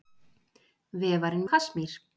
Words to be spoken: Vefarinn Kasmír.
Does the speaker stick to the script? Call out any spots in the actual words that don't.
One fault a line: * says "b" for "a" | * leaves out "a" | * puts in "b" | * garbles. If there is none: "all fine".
all fine